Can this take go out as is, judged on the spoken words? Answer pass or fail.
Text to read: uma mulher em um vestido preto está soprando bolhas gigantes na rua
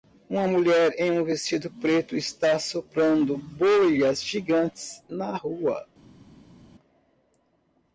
pass